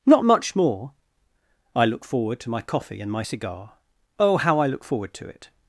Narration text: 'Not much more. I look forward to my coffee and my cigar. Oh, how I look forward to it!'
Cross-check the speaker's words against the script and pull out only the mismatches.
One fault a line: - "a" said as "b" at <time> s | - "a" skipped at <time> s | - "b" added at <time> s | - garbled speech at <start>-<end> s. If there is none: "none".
none